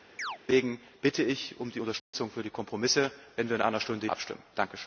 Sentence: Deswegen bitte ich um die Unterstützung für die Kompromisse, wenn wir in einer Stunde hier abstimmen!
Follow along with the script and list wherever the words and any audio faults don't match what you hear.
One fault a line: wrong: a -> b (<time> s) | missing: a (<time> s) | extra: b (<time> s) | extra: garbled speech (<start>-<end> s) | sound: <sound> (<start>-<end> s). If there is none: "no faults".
sound: chirp (0.2-0.4 s)
sound: dropout (2.0-2.1 s)
missing: hier (4.1 s)